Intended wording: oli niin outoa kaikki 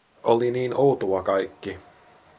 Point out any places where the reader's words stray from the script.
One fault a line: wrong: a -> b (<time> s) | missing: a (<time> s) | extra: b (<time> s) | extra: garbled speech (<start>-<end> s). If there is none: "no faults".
no faults